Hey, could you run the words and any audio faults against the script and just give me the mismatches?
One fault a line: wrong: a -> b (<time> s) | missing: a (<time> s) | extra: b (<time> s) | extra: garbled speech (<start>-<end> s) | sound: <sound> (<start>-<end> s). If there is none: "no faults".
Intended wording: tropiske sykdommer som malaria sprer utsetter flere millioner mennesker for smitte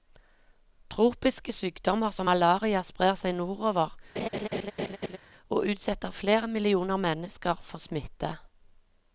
extra: seg nordover og (3.2 s)
sound: laugh (4.2-5.2 s)